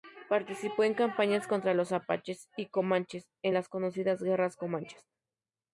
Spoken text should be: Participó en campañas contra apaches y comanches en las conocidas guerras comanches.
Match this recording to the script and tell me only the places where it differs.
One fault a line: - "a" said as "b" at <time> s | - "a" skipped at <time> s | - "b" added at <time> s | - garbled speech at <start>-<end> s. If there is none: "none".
- "los" added at 1.8 s